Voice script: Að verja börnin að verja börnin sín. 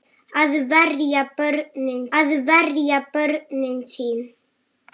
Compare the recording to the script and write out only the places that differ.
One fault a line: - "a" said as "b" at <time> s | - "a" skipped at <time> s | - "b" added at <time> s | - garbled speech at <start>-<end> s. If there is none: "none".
none